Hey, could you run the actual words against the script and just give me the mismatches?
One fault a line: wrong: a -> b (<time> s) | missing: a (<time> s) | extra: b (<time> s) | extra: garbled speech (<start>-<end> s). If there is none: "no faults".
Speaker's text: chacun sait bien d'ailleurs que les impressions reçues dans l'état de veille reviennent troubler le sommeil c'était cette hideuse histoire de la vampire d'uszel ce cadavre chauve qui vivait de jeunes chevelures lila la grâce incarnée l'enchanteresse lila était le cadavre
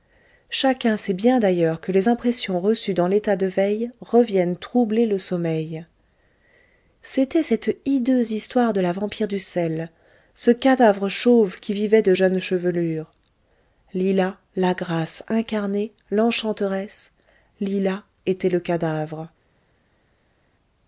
no faults